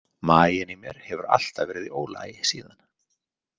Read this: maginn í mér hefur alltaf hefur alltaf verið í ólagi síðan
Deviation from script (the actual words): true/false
true